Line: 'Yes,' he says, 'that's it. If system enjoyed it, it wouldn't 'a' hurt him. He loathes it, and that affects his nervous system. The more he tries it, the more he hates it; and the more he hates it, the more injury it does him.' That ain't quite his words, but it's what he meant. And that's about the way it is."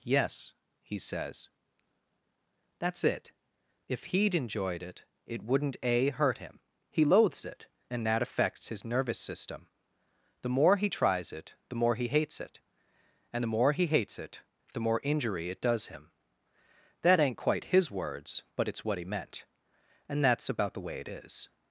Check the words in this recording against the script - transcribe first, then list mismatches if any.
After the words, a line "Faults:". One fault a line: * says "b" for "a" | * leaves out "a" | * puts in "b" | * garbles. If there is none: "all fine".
'Yes,' he says, 'that's it. If he'd enjoyed it, it wouldn't 'a' hurt him. He loathes it, and that affects his nervous system. The more he tries it, the more he hates it; and the more he hates it, the more injury it does him.' That ain't quite his words, but it's what he meant. And that's about the way it is."
Faults:
* says "he'd" for "system"